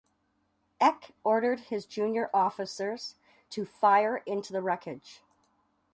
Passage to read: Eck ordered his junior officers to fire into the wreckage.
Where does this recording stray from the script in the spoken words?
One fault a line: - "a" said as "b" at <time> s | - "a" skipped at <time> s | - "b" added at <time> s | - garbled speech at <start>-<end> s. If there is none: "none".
none